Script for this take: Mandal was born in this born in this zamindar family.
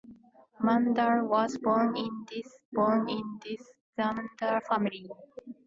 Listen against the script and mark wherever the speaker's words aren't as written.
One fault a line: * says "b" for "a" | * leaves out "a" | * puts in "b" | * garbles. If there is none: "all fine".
all fine